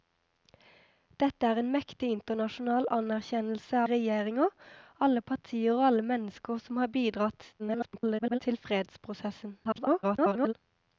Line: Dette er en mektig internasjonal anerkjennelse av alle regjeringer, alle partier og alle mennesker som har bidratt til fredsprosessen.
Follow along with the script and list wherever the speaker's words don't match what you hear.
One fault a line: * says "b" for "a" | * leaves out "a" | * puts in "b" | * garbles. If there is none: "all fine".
* leaves out "av alle"
* garbles
* garbles